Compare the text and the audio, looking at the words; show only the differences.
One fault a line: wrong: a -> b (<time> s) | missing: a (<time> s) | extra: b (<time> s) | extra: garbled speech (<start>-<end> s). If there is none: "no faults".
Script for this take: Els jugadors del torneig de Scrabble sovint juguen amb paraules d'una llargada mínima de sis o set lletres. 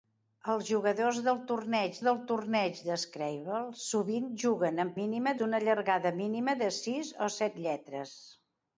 extra: del torneig (2.1 s)
wrong: paraules -> mínima (5.0 s)